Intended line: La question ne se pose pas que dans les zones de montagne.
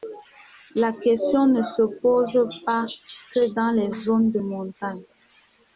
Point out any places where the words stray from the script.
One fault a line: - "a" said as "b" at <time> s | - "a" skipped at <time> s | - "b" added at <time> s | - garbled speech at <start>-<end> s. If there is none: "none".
none